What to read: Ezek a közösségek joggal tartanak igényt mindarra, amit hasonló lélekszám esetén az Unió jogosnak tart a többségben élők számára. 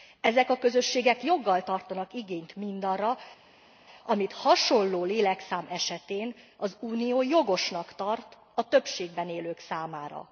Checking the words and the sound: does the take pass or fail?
pass